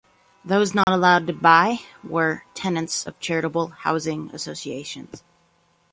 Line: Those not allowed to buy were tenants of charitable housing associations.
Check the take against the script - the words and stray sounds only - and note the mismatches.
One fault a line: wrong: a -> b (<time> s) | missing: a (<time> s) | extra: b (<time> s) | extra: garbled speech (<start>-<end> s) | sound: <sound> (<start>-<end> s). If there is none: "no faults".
sound: dropout (0.8-0.9 s)